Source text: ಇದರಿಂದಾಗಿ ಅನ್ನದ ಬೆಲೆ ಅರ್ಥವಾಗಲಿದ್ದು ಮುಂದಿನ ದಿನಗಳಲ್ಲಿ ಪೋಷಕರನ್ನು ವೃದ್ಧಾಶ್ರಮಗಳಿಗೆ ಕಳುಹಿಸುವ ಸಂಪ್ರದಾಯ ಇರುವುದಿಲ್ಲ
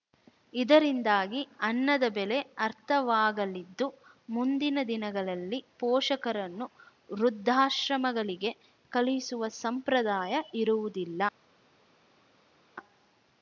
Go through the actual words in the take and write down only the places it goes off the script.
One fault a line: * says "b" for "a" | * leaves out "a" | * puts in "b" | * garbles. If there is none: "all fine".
all fine